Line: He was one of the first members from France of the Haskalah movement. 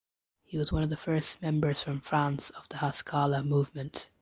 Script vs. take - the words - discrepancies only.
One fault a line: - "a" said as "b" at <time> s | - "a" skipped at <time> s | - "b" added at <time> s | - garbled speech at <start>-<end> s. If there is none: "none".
none